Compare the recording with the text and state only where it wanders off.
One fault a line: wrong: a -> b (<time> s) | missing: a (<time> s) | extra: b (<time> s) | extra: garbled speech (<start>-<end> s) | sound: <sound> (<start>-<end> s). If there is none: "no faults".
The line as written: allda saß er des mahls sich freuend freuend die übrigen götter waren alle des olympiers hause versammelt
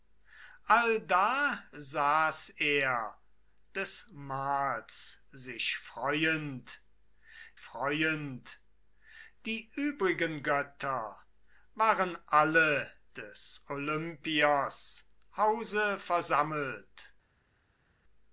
no faults